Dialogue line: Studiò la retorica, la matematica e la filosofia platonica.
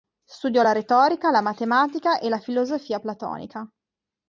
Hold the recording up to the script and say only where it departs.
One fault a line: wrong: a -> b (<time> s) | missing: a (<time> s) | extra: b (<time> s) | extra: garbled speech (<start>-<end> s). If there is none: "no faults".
no faults